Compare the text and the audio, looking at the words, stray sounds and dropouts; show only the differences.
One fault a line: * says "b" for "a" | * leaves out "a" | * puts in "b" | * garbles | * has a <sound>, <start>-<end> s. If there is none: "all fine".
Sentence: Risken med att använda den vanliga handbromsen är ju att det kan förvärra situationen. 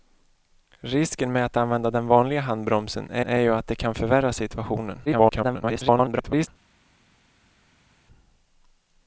* puts in "är"
* garbles